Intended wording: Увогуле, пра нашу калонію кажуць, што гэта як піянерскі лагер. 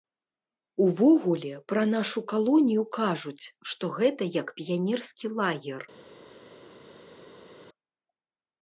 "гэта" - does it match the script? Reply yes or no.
yes